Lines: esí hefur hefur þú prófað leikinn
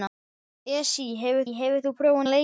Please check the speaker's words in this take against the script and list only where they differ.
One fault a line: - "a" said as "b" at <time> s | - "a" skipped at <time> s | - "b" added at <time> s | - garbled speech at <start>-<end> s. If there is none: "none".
none